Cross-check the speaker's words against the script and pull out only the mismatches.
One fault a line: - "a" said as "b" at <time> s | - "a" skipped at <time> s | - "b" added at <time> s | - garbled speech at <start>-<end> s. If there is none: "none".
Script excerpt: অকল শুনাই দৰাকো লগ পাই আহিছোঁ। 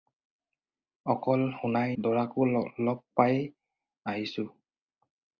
none